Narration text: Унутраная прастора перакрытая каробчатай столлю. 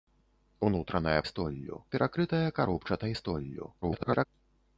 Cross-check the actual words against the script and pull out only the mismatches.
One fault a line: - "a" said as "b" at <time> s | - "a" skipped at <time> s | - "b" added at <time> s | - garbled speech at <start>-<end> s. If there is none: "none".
- "прастора" said as "столлю" at 1.2 s
- garbled speech at 3.8-4.3 s